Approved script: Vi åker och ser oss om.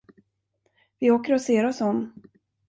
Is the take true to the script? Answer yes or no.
yes